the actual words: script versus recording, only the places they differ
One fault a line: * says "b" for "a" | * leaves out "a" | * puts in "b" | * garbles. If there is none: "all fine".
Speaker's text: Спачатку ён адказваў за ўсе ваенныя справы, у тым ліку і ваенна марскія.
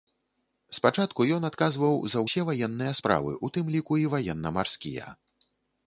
all fine